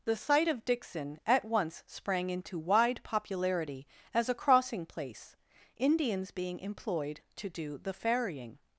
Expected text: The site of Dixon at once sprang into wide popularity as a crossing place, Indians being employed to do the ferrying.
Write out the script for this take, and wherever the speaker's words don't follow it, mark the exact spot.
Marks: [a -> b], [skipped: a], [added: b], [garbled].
The site of Dixon at once sprang into wide popularity as a crossing place, Indians being employed to do the ferrying.